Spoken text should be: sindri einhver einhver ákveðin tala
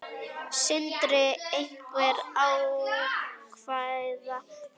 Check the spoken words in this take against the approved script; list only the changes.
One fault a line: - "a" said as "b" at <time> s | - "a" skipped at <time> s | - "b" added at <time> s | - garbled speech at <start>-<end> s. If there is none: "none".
- "einhver" skipped at 2.2 s